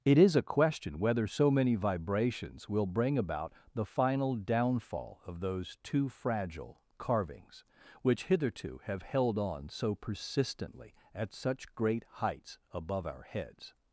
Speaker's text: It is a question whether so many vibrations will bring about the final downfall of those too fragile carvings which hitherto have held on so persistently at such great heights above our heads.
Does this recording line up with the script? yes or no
yes